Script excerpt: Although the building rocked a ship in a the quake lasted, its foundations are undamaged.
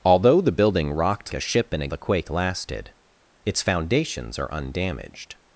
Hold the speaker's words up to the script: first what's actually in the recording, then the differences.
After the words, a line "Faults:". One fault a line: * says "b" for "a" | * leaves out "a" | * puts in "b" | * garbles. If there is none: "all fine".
Although the building rocked a ship in a the quake lasted, its foundations are undamaged.
Faults:
all fine